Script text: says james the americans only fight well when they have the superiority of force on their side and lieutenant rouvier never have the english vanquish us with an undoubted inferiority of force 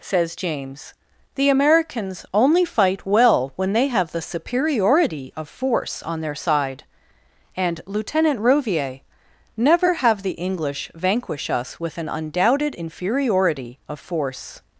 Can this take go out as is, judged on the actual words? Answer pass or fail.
pass